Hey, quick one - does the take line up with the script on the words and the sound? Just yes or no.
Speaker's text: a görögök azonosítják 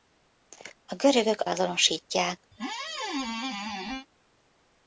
no